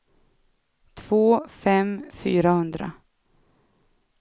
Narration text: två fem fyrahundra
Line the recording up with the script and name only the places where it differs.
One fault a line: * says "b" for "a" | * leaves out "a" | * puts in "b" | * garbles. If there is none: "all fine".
all fine